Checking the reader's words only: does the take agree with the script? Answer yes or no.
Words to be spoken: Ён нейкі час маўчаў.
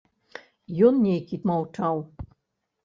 no